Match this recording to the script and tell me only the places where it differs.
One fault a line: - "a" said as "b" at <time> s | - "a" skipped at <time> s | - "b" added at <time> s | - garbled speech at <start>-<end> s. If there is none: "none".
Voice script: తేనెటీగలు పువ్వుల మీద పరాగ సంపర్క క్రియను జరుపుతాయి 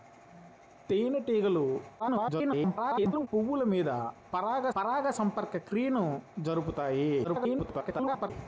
- garbled speech at 2.0-3.3 s
- "పరాగ" added at 4.8 s
- garbled speech at 7.2-8.3 s